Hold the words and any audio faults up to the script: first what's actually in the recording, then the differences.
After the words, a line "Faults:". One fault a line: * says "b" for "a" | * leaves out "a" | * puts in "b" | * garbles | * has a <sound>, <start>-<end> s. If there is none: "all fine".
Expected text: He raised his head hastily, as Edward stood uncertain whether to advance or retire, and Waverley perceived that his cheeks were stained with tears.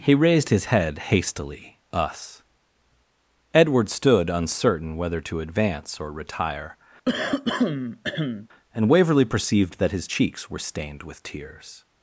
He raised his head hastily, us Edward stood uncertain whether to advance or retire, and Waverley perceived that his cheeks were stained with tears.
Faults:
* says "us" for "as"
* has a throat clearing, 7.1-8.5 s